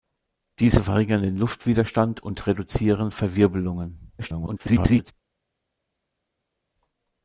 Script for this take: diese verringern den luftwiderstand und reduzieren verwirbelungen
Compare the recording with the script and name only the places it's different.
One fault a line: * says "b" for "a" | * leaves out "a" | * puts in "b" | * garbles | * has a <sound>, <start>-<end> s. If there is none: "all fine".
* garbles